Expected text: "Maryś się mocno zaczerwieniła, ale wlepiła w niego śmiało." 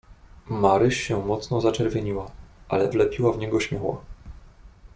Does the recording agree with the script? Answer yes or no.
yes